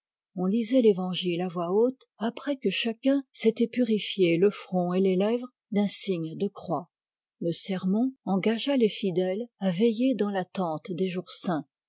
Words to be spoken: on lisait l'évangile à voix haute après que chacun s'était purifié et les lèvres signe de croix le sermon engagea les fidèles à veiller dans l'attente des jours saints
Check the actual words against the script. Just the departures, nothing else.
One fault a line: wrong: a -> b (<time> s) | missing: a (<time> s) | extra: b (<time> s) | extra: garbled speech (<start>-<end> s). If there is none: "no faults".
extra: le front (4.4 s)
extra: d'un (5.7 s)